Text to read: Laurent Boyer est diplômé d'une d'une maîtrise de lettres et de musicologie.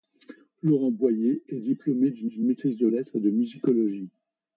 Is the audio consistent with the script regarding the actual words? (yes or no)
yes